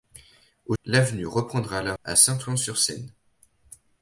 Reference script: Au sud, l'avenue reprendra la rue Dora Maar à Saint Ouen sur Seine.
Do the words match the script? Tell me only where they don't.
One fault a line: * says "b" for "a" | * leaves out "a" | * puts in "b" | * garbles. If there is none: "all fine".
* leaves out "sud"
* leaves out "rue Dora Maar"